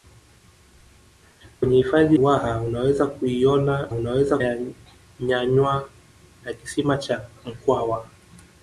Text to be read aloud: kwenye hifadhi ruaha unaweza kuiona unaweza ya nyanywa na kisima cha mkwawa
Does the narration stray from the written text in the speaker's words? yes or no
no